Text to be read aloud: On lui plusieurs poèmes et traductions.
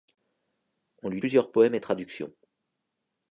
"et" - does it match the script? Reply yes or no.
yes